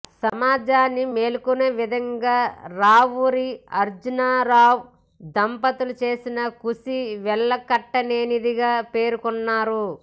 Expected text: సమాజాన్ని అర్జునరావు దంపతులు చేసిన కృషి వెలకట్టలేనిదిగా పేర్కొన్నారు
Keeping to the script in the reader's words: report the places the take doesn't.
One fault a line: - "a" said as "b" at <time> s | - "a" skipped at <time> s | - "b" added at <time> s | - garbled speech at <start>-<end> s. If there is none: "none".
- "మేల్కొనే విధంగా రావూరి" added at 1.1 s